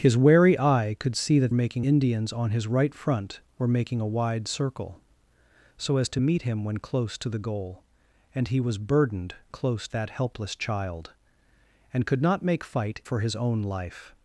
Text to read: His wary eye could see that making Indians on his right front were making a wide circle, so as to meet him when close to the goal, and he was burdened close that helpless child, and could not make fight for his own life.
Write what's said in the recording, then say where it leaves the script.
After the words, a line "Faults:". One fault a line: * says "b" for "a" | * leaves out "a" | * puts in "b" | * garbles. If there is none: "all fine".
His wary eye could see that making Indians on his right front were making a wide circle, so as to meet him when close to the goal, and he was burdened close that helpless child, and could not make fight for his own life.
Faults:
all fine